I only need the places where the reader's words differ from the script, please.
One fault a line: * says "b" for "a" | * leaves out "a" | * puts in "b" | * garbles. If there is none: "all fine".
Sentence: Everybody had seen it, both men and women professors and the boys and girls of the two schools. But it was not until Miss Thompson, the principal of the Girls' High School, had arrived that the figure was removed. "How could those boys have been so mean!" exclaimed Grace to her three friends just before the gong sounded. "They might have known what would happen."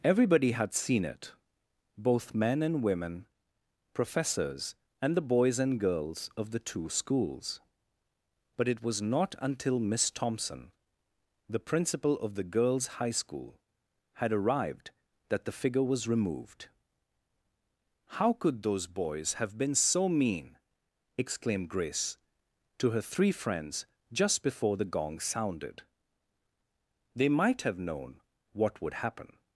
all fine